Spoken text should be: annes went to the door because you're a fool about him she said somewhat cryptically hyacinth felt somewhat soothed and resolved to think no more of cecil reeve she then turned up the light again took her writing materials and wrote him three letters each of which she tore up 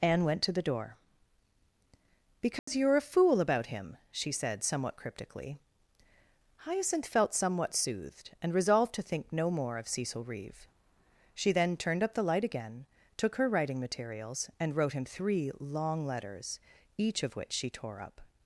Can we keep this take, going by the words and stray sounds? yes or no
no